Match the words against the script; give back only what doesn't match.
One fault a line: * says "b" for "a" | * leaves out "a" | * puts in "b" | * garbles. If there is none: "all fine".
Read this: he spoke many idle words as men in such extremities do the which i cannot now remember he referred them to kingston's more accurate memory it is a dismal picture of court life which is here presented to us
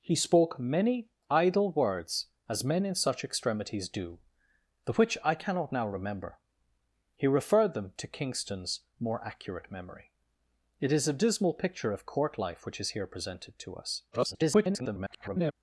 * garbles